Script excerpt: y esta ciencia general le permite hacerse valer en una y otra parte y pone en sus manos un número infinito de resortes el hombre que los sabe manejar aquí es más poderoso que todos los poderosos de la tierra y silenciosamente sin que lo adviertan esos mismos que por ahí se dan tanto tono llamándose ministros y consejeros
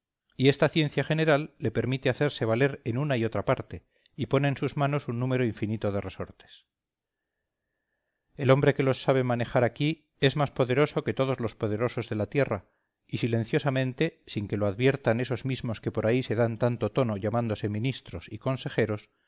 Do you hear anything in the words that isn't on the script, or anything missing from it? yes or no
no